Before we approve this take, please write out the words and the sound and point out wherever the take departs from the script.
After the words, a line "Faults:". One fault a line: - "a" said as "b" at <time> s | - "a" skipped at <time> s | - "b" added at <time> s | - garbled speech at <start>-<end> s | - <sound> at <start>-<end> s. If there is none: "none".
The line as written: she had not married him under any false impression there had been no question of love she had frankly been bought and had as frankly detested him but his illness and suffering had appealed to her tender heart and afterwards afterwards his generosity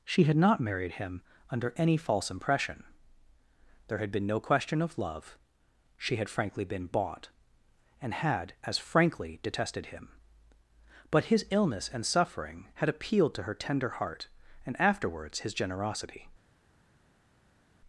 she had not married him under any false impression there had been no question of love she had frankly been bought and had as frankly detested him but his illness and suffering had appealed to her tender heart and afterwards his generosity
Faults:
- "afterwards" skipped at 15.4 s